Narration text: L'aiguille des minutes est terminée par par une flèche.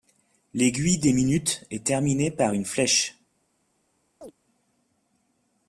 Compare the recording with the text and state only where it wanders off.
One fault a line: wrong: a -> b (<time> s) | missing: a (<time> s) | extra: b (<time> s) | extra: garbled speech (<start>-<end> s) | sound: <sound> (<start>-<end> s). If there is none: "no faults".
missing: par (2.5 s)
sound: chirp (4.2-4.3 s)